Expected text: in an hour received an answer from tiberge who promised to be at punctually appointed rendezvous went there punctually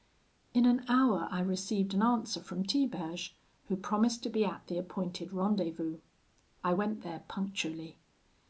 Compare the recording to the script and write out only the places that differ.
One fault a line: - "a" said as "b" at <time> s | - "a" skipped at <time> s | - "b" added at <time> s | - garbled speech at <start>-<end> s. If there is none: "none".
- "i" added at 1.3 s
- "punctually" said as "the" at 4.7 s
- "i" added at 6.6 s